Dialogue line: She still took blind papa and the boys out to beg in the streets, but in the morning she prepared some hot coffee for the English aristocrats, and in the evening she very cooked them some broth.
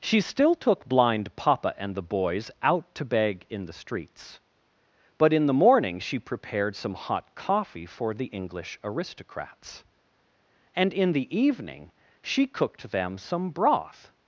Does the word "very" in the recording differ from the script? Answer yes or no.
yes